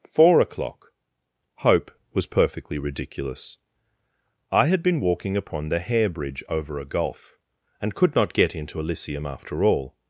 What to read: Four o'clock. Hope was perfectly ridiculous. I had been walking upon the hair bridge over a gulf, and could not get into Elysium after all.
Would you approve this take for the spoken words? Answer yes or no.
yes